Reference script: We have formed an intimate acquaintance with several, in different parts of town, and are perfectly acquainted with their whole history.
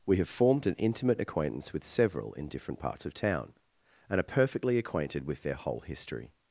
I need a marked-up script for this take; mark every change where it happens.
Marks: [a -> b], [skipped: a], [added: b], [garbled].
We have formed an intimate acquaintance with several, in different parts of town, and are perfectly acquainted with their whole history.